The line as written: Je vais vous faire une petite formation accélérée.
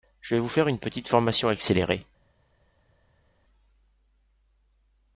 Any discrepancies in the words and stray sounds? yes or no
no